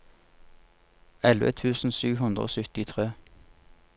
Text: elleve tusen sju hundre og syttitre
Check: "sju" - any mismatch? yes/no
no